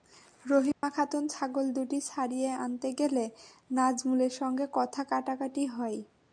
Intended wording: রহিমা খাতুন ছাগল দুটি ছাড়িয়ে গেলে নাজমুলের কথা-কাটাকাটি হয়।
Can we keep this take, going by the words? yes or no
no